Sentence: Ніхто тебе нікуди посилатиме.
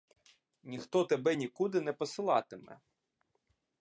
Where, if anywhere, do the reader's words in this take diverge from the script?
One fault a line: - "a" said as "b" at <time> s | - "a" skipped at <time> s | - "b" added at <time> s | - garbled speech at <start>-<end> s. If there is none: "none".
- "не" added at 1.8 s